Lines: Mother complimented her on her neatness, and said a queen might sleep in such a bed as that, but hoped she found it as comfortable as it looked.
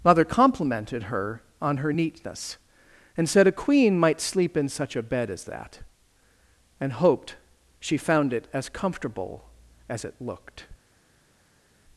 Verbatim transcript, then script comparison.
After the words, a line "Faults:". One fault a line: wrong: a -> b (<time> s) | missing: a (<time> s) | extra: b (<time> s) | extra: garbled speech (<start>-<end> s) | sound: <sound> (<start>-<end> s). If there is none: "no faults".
Mother complimented her on her neatness, and said a queen might sleep in such a bed as that, and hoped she found it as comfortable as it looked.
Faults:
wrong: but -> and (6.8 s)